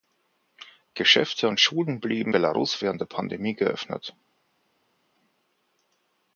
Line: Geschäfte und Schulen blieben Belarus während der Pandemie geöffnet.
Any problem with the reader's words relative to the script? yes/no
no